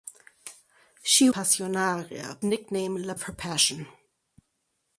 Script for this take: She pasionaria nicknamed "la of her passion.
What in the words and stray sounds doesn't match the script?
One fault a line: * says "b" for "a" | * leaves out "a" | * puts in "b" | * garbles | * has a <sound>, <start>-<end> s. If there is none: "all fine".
all fine